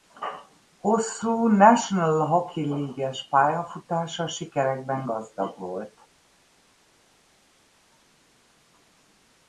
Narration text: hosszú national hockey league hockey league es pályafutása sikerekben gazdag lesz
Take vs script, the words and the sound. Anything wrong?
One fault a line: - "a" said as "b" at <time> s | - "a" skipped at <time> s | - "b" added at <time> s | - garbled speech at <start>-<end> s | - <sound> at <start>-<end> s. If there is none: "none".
- "hockey league" skipped at 3.1 s
- "lesz" said as "volt" at 5.6 s